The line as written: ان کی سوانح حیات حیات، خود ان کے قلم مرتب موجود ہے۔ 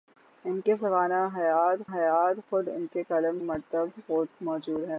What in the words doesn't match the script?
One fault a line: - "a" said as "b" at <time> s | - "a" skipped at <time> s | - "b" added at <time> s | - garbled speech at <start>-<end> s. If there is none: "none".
none